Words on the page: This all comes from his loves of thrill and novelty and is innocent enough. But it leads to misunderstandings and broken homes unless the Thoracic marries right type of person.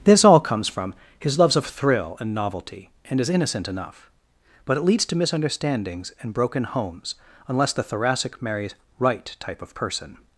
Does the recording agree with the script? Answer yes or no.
yes